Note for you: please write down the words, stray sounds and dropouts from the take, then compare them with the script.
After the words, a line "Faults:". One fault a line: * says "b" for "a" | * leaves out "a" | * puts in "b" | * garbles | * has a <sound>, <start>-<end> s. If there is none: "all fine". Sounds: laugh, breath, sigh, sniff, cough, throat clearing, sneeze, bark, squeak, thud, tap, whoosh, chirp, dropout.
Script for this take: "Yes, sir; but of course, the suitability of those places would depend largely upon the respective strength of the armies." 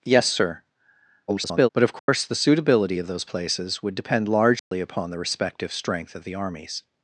"Yes, sir; [garbled] but of course, the suitability of those places would depend largely upon the respective strength of the armies."
Faults:
* garbles
* has a dropout, 2.0-2.1 s
* has a dropout, 4.6-4.7 s